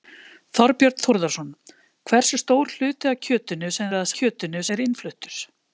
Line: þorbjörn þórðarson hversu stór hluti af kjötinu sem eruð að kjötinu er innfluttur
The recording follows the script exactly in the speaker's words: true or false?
true